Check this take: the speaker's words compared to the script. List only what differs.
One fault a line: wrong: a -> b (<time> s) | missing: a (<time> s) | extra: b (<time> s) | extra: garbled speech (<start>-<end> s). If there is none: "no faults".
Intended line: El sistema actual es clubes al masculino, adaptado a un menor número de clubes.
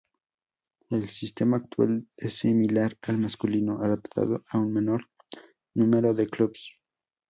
wrong: clubes -> similar (2.3 s)